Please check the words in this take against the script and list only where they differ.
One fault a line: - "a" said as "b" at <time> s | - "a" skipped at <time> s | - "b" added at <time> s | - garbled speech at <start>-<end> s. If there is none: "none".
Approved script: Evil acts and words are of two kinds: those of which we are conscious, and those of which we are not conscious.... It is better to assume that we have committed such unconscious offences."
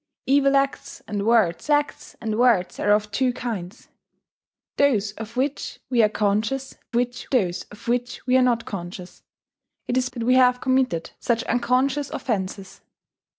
- "acts and words" added at 1.7 s
- "and" said as "which" at 7.0 s
- "better to assume" skipped at 10.1 s